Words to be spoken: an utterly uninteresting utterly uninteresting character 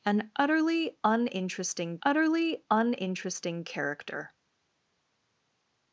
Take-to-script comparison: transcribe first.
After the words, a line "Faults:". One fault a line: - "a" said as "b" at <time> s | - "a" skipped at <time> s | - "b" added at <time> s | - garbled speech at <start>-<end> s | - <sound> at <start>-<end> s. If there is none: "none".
an utterly uninteresting utterly uninteresting character
Faults:
none